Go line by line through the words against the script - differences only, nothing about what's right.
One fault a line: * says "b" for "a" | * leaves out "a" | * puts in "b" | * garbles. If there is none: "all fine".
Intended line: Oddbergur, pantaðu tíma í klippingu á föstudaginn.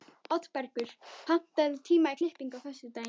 all fine